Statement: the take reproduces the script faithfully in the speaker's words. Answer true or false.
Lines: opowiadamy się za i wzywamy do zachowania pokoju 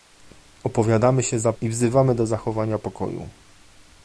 true